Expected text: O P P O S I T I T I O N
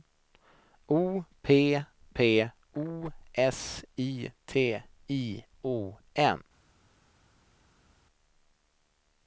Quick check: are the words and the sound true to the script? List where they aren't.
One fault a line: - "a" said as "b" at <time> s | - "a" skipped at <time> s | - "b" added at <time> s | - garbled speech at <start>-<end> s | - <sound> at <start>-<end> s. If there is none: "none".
- "T I" skipped at 5.5 s